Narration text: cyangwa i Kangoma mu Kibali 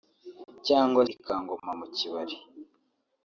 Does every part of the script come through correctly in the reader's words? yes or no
yes